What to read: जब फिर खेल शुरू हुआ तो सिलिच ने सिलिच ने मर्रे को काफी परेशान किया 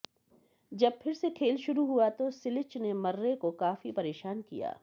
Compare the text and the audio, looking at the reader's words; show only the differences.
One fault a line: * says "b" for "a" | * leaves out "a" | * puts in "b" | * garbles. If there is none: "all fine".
* puts in "से"
* leaves out "सिलिच ने"